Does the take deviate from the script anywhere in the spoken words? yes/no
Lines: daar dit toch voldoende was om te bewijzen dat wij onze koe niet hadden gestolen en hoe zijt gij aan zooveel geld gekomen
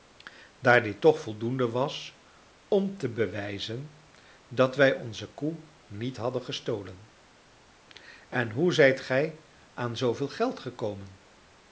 no